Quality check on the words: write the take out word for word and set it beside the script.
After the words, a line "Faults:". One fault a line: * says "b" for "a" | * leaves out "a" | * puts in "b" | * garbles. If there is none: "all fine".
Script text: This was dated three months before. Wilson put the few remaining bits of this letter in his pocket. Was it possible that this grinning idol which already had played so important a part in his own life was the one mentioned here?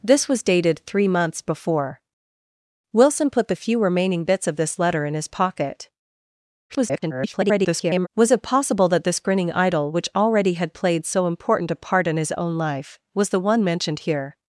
This was dated three months before. Wilson put the few remaining bits of this letter in his pocket. [garbled] Was it possible that this grinning idol which already had played so important a part in his own life was the one mentioned here?
Faults:
* garbles